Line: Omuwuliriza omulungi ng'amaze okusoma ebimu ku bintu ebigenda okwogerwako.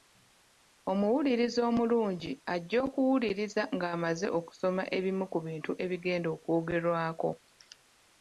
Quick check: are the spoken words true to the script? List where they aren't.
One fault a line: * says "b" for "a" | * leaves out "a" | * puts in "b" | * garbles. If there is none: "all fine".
* puts in "ajja okuwuliriza"